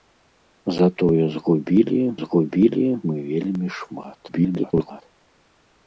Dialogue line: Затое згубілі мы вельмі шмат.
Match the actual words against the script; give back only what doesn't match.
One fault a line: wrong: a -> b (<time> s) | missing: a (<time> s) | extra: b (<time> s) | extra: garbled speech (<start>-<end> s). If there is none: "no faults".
extra: згубілі (2.2 s)
extra: garbled speech (4.3-5.0 s)